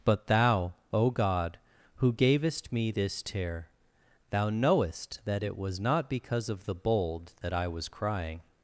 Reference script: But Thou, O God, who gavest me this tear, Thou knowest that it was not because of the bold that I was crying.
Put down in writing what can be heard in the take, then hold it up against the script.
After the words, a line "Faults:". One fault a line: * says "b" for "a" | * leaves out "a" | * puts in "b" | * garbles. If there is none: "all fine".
But Thou, O God, who gavest me this tear, Thou knowest that it was not because of the bold that I was crying.
Faults:
all fine